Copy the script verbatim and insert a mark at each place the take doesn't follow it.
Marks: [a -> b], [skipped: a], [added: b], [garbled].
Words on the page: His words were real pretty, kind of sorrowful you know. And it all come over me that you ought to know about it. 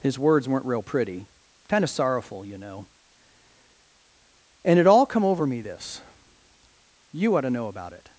His words [were -> weren't] real pretty, kind of sorrowful you know. And it all come over me [that -> this] you ought to know about it.